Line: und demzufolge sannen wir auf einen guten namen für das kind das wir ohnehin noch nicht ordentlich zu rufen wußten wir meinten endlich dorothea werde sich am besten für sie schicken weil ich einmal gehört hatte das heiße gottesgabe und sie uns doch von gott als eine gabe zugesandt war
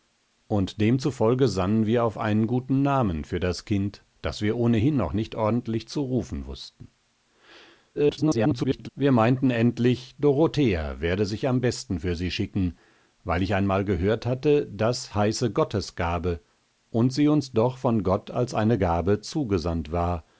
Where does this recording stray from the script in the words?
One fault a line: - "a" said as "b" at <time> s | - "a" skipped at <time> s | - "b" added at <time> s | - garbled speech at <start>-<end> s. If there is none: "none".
- garbled speech at 7.9-8.9 s